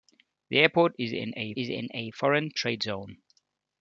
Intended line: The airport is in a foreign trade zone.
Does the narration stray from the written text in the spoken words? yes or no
yes